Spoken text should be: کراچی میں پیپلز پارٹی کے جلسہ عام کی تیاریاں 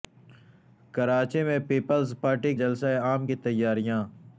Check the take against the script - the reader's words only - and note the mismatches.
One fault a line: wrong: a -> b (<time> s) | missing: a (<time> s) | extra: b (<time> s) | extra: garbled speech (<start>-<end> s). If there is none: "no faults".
missing: کے (2.5 s)